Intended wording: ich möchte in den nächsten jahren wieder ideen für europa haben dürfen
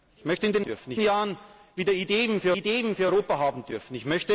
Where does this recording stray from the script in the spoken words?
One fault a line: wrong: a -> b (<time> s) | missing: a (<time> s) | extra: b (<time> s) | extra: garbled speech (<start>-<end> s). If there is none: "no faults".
wrong: nächsten -> dürfen (0.6 s)
extra: ideen für (2.5 s)